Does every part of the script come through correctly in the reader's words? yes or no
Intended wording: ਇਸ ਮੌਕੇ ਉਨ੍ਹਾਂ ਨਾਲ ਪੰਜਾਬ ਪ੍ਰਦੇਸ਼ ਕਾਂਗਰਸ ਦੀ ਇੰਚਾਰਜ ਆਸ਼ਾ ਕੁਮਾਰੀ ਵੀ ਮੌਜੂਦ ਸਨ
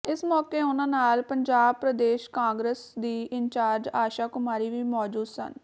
yes